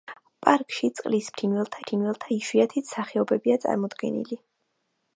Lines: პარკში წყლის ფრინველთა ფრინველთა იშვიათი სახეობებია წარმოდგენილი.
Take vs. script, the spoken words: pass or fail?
pass